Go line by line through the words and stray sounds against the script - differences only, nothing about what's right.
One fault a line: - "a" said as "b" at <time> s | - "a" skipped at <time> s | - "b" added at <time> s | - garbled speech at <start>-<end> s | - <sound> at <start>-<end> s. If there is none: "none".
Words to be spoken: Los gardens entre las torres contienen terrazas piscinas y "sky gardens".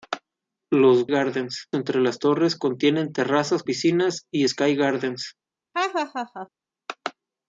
- laugh at 5.7-6.5 s